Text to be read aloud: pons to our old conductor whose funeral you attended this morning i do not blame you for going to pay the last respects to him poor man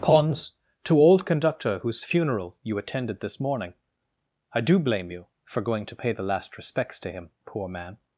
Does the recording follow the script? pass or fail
fail